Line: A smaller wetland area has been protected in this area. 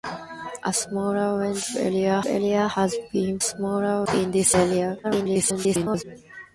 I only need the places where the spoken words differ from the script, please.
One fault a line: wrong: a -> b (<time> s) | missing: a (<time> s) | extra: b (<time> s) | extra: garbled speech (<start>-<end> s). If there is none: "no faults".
extra: area (2.2 s)
wrong: protected -> smaller (3.4 s)
extra: garbled speech (5.0-6.0 s)